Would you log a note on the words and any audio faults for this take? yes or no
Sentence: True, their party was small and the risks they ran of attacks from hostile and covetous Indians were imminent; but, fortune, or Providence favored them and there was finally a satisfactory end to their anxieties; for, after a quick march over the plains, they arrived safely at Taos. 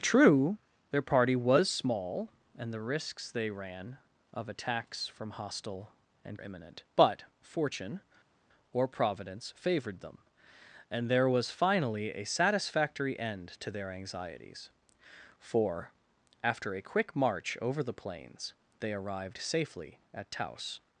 yes